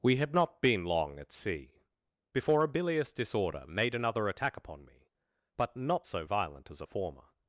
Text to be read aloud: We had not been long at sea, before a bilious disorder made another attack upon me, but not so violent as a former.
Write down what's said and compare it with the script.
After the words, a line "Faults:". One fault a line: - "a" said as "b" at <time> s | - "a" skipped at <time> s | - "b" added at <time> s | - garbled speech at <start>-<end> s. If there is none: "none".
We had not been long at sea, before a bilious disorder made another attack upon me, but not so violent as a former.
Faults:
none